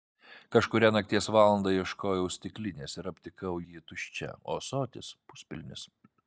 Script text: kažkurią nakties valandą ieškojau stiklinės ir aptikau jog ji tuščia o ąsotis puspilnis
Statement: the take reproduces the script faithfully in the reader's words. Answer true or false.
false